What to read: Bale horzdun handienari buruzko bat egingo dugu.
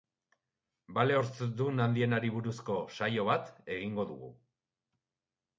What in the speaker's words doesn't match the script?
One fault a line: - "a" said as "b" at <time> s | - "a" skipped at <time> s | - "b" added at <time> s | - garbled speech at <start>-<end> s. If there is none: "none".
- "saio" added at 3.0 s